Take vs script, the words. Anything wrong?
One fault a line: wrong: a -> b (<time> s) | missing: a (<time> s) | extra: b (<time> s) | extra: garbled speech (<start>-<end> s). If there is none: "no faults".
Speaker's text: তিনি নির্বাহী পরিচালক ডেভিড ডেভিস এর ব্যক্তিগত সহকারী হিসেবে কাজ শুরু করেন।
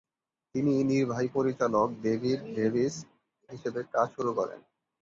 missing: এর ব্যক্তিগত সহকারী (3.0 s)